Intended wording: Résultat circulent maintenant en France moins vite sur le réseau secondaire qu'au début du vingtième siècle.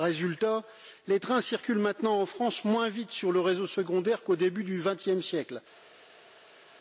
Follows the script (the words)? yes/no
no